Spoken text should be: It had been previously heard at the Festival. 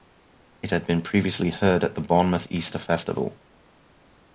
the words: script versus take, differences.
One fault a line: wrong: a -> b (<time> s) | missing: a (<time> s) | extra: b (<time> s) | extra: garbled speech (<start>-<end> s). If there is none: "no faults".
extra: Bournemouth Easter (2.0 s)